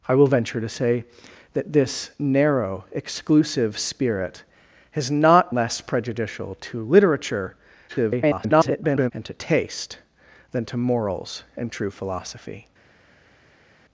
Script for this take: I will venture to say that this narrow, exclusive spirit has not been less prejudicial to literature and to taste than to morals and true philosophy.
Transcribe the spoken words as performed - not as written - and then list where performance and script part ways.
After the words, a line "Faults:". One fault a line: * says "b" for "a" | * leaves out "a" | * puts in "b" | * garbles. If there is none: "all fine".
I will venture to say that this narrow, exclusive spirit has not less prejudicial to literature [garbled] and to taste than to morals and true philosophy.
Faults:
* leaves out "been"
* garbles